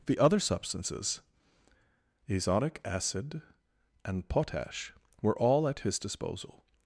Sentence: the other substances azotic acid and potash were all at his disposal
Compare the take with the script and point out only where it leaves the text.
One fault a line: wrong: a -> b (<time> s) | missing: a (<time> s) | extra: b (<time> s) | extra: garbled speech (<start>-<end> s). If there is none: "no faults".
no faults